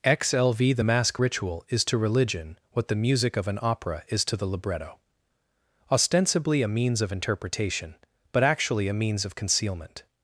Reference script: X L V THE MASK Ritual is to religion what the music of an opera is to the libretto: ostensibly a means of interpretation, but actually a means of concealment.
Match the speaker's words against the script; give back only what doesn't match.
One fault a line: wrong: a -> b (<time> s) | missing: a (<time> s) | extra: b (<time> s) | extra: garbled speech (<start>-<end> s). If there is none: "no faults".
no faults